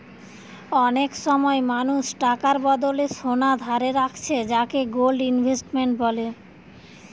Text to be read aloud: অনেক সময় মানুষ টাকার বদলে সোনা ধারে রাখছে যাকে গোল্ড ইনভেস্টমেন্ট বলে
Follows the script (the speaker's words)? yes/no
yes